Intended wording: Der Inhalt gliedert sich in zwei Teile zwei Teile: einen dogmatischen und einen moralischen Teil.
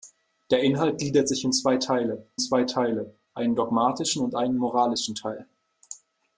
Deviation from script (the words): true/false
false